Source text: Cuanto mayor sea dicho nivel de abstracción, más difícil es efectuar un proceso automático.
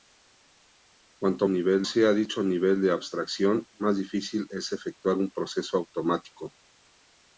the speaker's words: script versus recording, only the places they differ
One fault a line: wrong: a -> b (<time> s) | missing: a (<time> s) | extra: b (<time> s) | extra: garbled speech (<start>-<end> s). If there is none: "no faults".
wrong: mayor -> nivel (1.5 s)